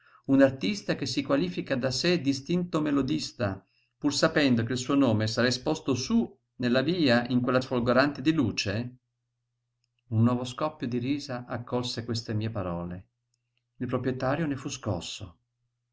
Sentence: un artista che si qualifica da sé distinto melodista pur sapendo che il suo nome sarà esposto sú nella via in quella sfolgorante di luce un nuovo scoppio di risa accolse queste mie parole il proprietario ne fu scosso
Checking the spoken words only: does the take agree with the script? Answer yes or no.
yes